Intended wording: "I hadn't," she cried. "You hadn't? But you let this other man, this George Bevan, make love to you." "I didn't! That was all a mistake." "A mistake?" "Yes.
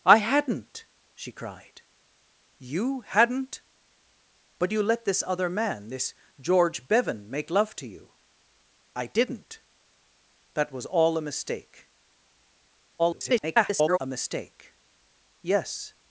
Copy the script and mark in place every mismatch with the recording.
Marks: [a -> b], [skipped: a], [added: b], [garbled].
"I hadn't," she cried. "You hadn't? But you let this other man, this George Bevan, make love to you." "I didn't! That was all a mistake." [garbled] "A mistake?" "Yes.